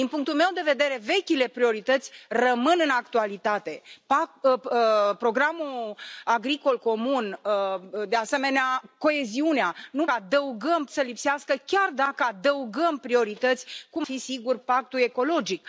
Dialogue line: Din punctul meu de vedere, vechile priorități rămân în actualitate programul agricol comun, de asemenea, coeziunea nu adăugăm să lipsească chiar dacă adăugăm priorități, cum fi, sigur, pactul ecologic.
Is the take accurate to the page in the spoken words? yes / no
yes